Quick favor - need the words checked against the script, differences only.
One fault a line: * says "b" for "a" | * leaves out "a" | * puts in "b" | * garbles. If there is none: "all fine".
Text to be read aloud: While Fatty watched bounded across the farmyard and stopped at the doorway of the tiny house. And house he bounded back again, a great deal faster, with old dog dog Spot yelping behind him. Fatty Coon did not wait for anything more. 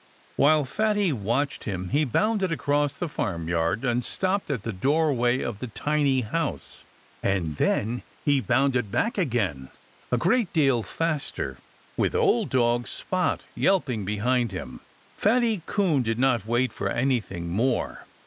* puts in "him he"
* says "then" for "house"
* leaves out "dog"